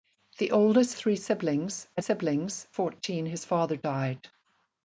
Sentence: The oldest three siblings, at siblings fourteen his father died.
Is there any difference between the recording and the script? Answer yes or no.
no